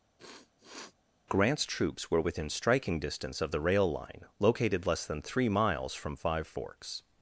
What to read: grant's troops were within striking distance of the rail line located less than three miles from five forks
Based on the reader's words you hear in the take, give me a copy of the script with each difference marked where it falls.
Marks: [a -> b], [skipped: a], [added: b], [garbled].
grant's troops were within striking distance of the rail line located less than three miles from five forks